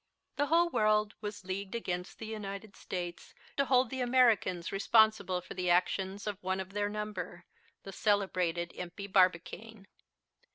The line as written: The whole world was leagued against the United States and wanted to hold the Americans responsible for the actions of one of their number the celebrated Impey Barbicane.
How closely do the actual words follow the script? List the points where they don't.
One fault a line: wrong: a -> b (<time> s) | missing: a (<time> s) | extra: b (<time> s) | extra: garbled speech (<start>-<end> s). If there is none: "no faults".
missing: and wanted (3.4 s)